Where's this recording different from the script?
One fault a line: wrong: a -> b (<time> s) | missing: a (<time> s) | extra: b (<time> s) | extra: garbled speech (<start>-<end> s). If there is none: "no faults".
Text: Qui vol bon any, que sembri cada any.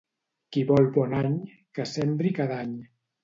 no faults